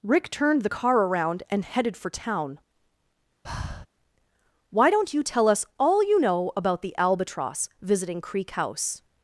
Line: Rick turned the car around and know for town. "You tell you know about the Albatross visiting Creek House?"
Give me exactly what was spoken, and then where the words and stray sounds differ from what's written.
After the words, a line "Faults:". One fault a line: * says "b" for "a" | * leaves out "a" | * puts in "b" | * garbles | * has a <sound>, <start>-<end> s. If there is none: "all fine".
Rick turned the car around and headed for town. "Why don't you tell us all you know about the Albatross visiting Creek House?"
Faults:
* says "headed" for "know"
* has a breath, 3.4-3.9 s
* puts in "Why don't"
* puts in "us all"